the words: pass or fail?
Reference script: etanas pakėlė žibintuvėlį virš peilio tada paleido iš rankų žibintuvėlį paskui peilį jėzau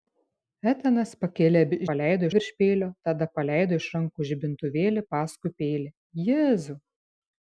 fail